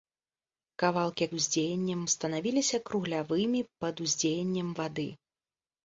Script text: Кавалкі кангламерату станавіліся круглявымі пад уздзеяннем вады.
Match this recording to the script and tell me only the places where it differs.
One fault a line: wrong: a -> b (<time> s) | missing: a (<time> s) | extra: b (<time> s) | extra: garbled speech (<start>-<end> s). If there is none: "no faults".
wrong: кангламерату -> уздзеяннем (1.4 s)